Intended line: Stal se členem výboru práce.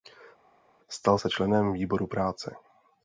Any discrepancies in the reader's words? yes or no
no